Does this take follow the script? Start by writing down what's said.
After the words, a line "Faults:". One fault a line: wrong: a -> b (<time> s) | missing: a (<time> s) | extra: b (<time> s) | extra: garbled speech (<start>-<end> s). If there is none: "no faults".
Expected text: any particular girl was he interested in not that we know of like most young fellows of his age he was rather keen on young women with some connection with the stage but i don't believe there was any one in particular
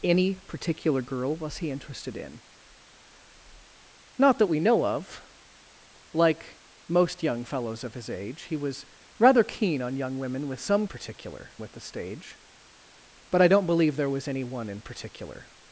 any particular girl was he interested in not that we know of like most young fellows of his age he was rather keen on young women with some particular with the stage but i don't believe there was any one in particular
Faults:
wrong: connection -> particular (10.8 s)